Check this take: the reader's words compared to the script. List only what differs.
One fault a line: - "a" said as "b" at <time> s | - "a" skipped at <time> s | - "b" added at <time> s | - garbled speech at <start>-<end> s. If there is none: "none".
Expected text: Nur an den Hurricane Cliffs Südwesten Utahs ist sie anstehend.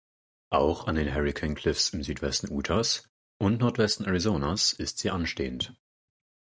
- "Nur" said as "Auch" at 0.5 s
- "im" added at 1.9 s
- "und Nordwesten Arizonas" added at 3.4 s